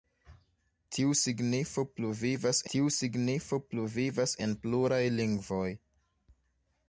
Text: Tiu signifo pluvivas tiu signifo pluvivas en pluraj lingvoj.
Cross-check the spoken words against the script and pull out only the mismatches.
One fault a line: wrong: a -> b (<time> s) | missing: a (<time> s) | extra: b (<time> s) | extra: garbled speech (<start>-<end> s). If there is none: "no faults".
no faults